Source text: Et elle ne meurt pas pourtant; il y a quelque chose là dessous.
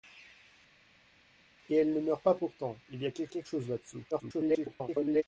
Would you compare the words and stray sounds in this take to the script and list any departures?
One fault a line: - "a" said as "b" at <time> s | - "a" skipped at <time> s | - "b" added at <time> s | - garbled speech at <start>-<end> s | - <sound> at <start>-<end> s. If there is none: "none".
- "quelque" added at 3.3 s
- garbled speech at 4.1-5.2 s